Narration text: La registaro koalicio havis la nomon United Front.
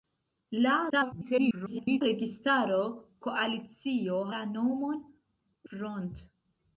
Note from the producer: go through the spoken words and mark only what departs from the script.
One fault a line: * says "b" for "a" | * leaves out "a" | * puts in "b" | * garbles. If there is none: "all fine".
* garbles
* leaves out "havis"
* leaves out "United"